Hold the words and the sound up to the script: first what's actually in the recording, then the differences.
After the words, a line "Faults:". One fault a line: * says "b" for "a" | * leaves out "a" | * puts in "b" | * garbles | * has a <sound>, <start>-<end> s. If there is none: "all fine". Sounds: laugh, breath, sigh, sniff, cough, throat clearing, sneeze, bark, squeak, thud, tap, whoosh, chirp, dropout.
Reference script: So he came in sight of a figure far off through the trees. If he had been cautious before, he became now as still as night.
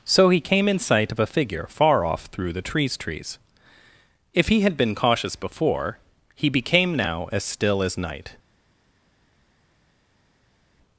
So he came in sight of a figure far off through the trees trees. If he had been cautious before, he became now as still as night.
Faults:
* puts in "trees"